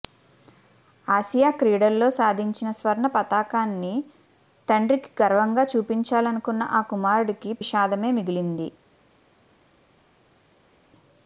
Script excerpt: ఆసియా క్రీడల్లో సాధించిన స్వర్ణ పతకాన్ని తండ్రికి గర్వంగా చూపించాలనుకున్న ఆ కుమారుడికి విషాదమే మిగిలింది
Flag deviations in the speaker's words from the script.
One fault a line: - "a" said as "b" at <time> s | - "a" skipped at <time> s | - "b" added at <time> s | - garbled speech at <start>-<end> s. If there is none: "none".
none